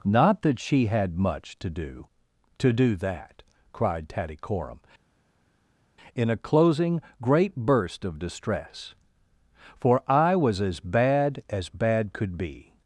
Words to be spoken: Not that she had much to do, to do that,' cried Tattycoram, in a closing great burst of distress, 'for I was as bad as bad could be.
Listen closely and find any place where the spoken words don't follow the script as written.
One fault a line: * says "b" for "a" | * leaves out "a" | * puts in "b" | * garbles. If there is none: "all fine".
all fine